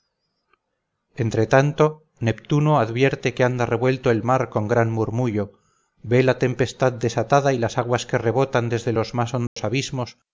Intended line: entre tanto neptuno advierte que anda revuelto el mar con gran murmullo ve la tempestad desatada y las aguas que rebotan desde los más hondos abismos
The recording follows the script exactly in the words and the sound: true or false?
false